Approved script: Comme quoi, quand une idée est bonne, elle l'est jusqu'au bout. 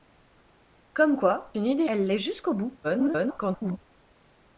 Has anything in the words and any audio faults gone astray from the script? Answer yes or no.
yes